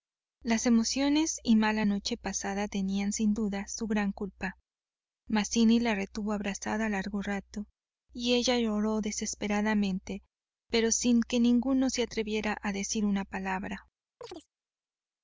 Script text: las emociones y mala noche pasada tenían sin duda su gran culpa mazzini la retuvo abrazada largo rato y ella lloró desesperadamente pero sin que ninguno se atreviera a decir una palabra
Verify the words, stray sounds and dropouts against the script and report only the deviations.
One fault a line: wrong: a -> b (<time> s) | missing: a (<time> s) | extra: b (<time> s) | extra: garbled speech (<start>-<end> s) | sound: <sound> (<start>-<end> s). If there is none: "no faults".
sound: chirp (14.2-14.5 s)